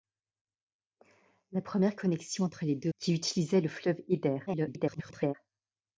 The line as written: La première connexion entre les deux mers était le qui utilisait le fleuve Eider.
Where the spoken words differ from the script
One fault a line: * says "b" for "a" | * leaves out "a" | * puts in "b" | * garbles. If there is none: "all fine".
* leaves out "mers était le"
* garbles